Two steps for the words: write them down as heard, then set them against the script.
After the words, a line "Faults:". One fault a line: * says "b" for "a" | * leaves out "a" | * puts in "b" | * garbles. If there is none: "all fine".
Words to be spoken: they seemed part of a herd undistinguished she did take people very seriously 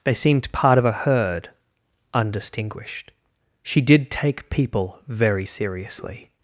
they seemed part of a herd undistinguished she did take people very seriously
Faults:
all fine